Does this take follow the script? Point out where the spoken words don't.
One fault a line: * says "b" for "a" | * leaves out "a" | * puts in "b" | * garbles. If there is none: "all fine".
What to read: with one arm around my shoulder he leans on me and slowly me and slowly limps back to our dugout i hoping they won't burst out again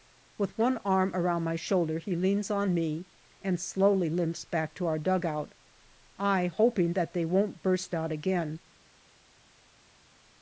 * leaves out "me and slowly"
* puts in "that"